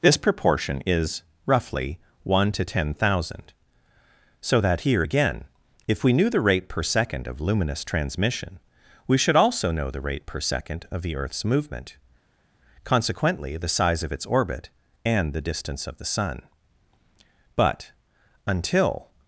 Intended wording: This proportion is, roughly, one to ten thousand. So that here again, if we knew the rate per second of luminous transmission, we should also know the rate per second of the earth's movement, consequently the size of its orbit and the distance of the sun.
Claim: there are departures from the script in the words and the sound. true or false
true